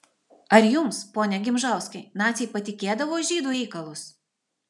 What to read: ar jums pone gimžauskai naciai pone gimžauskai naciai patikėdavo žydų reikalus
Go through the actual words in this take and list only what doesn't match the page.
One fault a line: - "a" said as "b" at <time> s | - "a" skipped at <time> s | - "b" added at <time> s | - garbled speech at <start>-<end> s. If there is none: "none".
- "pone gimžauskai naciai" skipped at 2.5 s